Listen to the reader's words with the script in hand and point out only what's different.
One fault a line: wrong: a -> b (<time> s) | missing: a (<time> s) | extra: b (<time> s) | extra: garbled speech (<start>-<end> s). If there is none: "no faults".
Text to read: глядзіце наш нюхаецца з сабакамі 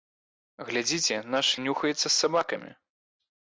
no faults